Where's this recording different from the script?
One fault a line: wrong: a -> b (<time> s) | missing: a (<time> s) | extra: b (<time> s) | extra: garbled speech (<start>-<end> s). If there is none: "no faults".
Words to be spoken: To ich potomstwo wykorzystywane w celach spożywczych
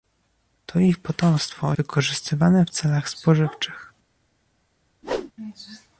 no faults